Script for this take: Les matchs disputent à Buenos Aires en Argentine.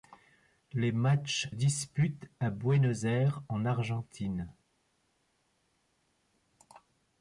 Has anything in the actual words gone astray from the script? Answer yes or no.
no